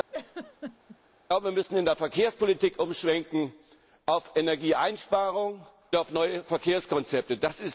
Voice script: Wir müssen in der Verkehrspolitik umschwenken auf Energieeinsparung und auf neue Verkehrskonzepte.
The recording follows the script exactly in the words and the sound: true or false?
false